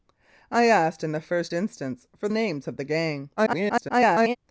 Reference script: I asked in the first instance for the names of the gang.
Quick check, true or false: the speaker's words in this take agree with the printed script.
false